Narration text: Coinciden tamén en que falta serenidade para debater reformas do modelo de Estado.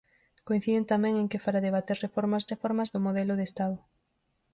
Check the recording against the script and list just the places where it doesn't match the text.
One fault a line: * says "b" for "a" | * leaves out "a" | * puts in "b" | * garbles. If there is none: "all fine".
* leaves out "falta serenidade"
* puts in "reformas"